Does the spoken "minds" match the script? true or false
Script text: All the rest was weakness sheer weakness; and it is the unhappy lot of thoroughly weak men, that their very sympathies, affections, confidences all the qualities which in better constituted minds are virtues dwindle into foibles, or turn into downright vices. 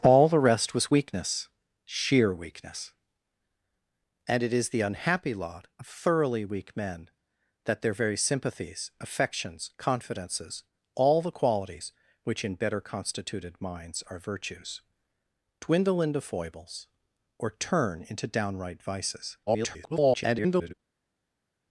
true